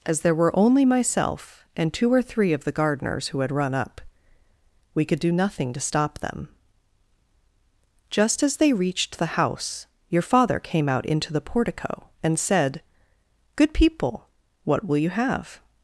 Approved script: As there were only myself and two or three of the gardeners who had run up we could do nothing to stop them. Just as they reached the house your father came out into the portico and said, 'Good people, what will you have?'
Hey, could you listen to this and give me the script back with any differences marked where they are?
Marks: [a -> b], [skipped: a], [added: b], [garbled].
As there were only myself and two or three of the gardeners who had run up we could do nothing to stop them. Just as they reached the house your father came out into the portico and said, 'Good people, what will you have?'